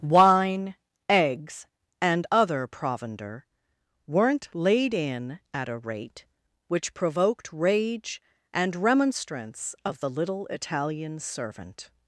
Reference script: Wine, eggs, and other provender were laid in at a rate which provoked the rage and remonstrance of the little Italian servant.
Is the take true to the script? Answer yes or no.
no